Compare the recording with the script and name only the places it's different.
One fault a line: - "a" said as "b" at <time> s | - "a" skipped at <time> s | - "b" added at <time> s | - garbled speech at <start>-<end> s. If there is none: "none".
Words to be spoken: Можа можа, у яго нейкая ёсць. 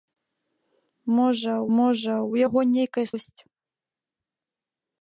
none